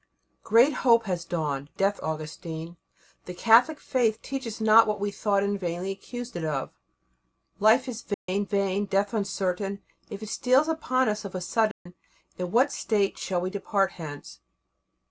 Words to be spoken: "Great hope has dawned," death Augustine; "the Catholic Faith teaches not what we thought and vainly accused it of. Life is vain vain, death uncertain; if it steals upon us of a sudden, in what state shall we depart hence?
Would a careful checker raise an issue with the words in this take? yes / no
no